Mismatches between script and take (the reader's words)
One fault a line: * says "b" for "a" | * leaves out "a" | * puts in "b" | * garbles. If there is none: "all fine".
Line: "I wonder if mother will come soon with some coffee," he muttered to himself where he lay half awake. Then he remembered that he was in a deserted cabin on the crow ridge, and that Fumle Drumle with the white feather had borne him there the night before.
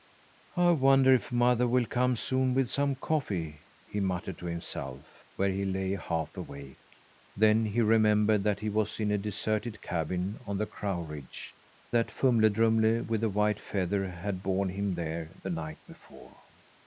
* leaves out "and"